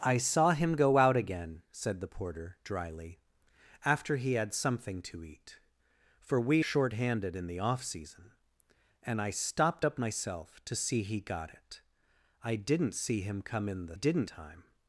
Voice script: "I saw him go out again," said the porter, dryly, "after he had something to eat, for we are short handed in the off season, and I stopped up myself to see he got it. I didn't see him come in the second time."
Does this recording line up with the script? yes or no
no